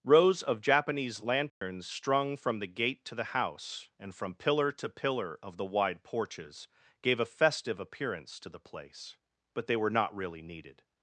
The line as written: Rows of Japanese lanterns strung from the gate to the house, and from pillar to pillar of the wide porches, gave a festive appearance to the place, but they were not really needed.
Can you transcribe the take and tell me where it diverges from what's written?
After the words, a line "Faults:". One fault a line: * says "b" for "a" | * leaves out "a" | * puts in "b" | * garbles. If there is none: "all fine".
Rows of Japanese lanterns strung from the gate to the house, and from pillar to pillar of the wide porches, gave a festive appearance to the place, but they were not really needed.
Faults:
all fine